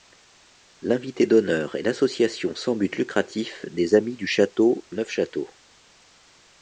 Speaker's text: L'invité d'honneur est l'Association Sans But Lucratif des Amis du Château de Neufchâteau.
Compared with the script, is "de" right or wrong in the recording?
wrong